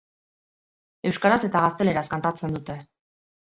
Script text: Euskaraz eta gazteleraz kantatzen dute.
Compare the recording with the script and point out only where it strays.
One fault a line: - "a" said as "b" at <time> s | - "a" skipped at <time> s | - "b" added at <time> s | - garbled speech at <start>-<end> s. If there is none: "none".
none